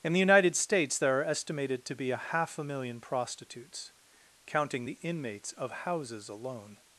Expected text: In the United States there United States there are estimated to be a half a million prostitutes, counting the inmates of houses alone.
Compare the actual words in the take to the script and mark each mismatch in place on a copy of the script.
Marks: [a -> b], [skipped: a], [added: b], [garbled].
In the United States there [skipped: United States there] are estimated to be a half a million prostitutes, counting the inmates of houses alone.